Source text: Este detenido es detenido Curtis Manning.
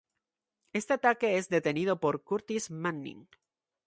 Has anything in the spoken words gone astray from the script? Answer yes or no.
yes